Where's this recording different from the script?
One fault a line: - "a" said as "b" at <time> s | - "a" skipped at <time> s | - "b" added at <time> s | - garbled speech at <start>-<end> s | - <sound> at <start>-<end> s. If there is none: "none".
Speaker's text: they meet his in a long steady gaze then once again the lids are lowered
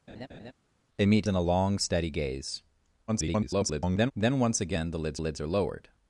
- laugh at 0.1-0.5 s
- "his" skipped at 1.3 s
- garbled speech at 3.1-4.1 s
- "lids" added at 5.2 s